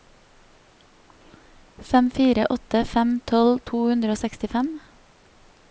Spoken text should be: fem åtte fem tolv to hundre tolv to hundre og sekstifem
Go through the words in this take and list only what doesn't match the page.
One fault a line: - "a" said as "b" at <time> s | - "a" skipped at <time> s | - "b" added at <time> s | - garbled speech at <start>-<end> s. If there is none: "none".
- "fire" added at 2.1 s
- "tolv to hundre" skipped at 4.2 s